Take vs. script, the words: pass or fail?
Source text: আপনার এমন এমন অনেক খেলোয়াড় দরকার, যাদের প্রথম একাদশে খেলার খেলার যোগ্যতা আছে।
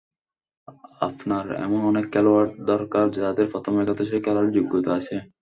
fail